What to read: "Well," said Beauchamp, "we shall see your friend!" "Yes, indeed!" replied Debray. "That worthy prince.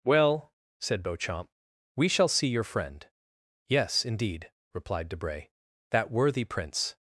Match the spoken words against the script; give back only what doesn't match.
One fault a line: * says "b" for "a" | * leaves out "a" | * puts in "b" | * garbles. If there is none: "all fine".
all fine